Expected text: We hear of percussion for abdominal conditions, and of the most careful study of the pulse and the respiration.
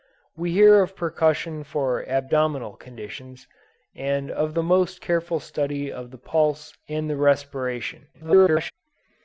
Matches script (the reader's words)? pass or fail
fail